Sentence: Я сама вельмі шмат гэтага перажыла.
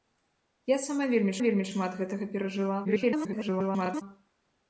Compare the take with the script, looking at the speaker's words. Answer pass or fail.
fail